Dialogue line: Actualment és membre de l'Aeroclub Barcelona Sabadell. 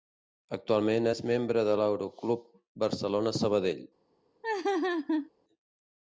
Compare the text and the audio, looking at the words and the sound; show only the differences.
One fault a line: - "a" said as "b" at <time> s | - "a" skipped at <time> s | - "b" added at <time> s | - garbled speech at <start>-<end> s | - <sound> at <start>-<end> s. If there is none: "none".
- laugh at 4.4-5.3 s